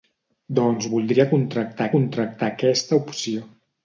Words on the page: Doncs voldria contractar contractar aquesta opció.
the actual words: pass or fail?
pass